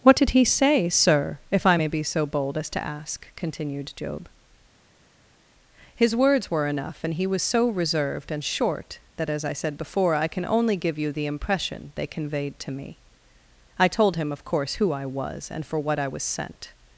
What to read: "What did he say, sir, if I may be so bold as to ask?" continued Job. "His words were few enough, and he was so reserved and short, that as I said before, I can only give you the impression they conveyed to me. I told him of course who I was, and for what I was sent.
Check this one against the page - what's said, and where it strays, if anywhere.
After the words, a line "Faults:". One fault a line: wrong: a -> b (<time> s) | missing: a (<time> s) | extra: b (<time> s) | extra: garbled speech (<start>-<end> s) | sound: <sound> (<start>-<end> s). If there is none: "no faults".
"What did he say, sir, if I may be so bold as to ask?" continued Job. "His words were enough, and he was so reserved and short, that as I said before, I can only give you the impression they conveyed to me. I told him of course who I was, and for what I was sent.
Faults:
missing: few (6.7 s)